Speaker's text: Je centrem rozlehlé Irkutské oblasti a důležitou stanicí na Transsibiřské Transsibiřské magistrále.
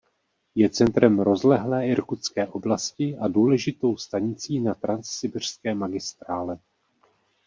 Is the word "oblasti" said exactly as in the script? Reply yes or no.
yes